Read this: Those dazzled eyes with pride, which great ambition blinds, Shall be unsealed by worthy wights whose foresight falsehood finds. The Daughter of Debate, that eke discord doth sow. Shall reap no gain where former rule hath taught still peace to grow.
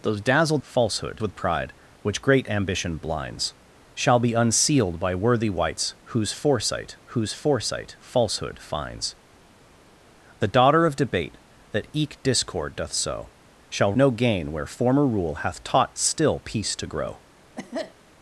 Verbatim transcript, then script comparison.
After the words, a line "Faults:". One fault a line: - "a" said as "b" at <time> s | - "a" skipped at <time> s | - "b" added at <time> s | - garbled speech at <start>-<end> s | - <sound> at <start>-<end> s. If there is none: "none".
Those dazzled falsehood with pride, which great ambition blinds, Shall be unsealed by worthy wights whose foresight whose foresight falsehood finds. The Daughter of Debate, that eke discord doth sow. Shall no gain where former rule hath taught still peace to grow.
Faults:
- "eyes" said as "falsehood" at 0.6 s
- "whose foresight" added at 7.1 s
- "reap" skipped at 13.9 s
- cough at 17.6-18.0 s